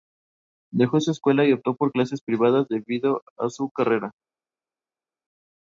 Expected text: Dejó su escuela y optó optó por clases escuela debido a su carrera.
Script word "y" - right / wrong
right